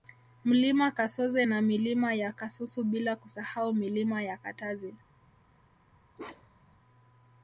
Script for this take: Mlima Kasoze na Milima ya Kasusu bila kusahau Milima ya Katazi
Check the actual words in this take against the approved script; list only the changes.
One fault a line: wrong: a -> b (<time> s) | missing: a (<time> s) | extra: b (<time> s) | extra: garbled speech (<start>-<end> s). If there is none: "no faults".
no faults